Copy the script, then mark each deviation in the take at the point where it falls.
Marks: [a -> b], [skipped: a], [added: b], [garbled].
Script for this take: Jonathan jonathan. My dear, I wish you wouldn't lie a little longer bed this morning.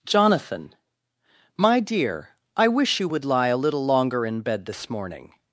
Jonathan [skipped: jonathan.] My dear, I wish you [wouldn't -> would] lie a little longer [added: in] bed this morning.